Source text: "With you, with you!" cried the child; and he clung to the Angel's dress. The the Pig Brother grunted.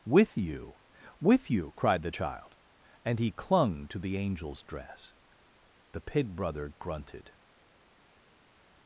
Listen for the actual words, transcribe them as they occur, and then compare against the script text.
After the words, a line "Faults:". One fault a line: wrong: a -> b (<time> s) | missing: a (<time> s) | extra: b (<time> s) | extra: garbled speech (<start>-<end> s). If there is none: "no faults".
"With you, with you!" cried the child; and he clung to the Angel's dress. The Pig Brother grunted.
Faults:
missing: the (6.0 s)